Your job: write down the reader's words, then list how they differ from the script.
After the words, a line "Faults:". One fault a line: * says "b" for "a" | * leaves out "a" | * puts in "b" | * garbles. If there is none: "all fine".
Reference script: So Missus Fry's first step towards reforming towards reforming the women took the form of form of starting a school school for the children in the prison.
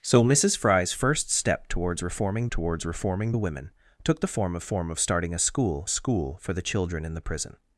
So Missus Fry's first step towards reforming towards reforming the women took the form of form of starting a school school for the children in the prison.
Faults:
all fine